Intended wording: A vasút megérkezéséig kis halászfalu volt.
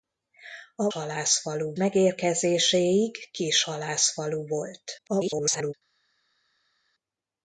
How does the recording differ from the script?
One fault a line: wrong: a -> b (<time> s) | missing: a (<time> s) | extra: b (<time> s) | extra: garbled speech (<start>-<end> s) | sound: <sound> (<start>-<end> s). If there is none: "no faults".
wrong: vasút -> halászfalu (0.9 s)
extra: garbled speech (5.0-5.7 s)